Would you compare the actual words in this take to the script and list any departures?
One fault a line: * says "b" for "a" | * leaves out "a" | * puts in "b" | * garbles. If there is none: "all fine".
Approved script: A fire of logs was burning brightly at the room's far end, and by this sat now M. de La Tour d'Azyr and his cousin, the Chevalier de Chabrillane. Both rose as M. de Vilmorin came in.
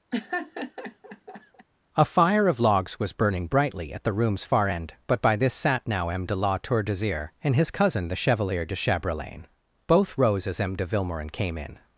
* says "but" for "and"